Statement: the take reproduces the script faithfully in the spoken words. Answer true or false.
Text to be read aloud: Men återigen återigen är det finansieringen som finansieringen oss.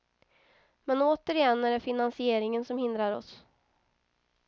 false